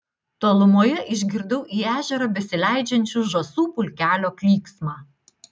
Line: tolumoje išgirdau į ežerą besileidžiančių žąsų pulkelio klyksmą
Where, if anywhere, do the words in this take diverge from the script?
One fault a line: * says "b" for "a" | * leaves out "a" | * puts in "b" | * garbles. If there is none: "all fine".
all fine